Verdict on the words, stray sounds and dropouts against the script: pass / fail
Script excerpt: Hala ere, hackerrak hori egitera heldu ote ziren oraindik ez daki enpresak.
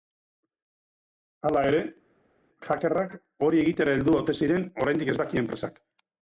pass